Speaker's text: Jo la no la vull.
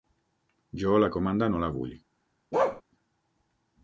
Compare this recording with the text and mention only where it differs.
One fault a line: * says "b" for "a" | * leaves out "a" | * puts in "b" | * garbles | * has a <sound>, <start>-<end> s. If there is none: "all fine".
* puts in "comanda"
* has a bark, 2.5-2.8 s